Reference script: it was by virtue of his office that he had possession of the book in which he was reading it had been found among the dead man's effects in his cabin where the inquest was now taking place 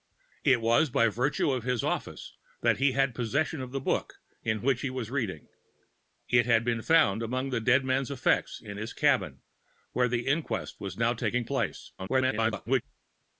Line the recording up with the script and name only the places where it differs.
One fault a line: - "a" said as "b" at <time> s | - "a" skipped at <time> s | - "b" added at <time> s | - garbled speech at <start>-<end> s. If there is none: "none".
- garbled speech at 12.0-12.8 s